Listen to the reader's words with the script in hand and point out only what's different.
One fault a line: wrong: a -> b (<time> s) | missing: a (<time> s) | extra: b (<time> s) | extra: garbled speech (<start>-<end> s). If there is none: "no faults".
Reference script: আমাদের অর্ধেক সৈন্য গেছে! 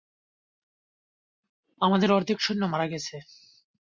extra: মারা (2.7 s)